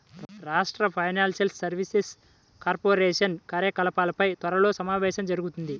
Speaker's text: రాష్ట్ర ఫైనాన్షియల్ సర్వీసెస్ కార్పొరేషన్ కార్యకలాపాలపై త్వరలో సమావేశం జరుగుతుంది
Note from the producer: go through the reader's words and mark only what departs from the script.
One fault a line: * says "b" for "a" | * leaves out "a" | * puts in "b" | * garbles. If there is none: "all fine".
all fine